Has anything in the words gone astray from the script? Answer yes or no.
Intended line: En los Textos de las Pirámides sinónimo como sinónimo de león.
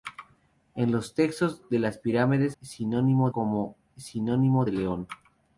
no